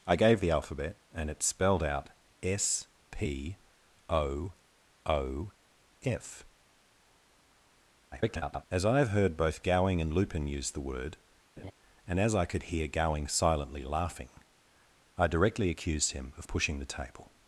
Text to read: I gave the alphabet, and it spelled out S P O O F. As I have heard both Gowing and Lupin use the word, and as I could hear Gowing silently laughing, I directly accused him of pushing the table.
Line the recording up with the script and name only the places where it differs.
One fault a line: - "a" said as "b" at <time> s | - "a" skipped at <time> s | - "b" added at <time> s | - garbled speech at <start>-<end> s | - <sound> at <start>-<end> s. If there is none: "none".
- garbled speech at 8.1-8.7 s
- laugh at 11.6-11.7 s